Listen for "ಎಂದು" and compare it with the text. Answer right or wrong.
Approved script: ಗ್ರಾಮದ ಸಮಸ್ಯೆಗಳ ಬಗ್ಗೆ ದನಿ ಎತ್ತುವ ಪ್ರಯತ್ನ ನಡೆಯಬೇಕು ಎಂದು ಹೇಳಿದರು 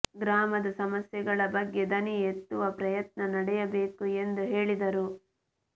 right